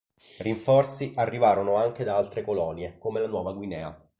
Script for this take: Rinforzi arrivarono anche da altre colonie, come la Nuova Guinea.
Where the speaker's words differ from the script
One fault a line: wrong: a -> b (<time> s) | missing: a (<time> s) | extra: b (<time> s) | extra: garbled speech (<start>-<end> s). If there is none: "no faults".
no faults